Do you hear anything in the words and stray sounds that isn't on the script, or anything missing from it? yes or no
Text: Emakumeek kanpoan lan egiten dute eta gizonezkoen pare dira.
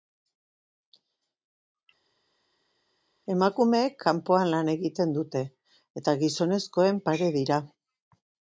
no